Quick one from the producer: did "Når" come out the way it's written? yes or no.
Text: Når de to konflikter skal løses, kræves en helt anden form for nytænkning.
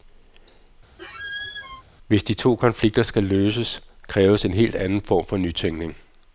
no